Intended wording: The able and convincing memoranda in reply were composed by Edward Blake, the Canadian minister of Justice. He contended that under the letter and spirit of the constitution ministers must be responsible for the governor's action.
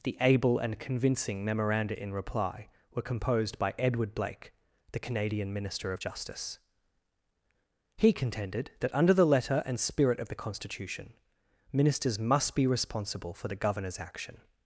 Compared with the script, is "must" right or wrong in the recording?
right